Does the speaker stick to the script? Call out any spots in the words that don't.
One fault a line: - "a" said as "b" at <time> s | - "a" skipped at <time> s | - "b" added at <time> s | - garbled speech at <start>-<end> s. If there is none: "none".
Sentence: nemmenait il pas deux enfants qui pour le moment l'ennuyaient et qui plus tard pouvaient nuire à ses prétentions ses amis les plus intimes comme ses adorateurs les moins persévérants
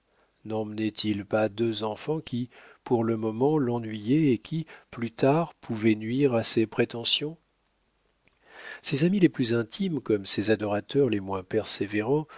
none